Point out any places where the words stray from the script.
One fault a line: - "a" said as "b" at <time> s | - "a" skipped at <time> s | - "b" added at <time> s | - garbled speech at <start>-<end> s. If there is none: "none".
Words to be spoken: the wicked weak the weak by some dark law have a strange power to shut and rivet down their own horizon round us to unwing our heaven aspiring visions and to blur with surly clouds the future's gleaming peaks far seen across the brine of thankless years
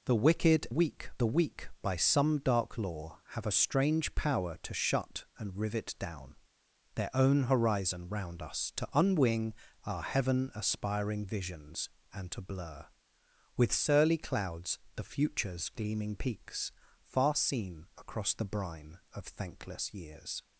none